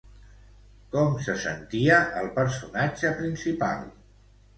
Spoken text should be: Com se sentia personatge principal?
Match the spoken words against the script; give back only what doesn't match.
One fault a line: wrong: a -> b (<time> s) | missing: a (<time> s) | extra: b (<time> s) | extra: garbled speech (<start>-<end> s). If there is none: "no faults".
extra: el (2.2 s)